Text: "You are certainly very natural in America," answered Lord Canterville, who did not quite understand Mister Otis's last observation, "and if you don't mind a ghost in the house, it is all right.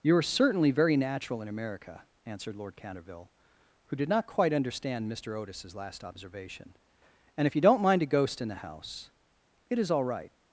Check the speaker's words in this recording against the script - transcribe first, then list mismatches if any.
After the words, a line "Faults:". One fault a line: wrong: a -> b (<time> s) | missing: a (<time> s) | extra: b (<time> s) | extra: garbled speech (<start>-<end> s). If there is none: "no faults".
"You are certainly very natural in America," answered Lord Canterville, who did not quite understand Mister Otis's last observation, "and if you don't mind a ghost in the house, it is all right.
Faults:
no faults